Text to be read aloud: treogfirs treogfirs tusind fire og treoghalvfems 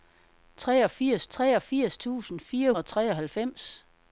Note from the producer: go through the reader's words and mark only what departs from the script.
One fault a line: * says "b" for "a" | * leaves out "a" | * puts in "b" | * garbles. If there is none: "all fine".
all fine